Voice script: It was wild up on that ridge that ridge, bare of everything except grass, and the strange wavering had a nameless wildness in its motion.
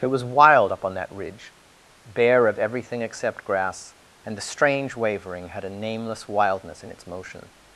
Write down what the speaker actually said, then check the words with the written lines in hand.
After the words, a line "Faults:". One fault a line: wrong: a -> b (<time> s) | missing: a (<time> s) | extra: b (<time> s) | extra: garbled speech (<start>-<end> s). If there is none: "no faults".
It was wild up on that ridge, bare of everything except grass, and the strange wavering had a nameless wildness in its motion.
Faults:
missing: that ridge (1.5 s)